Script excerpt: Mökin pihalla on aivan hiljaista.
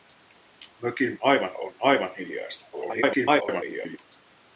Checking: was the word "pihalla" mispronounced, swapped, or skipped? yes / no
yes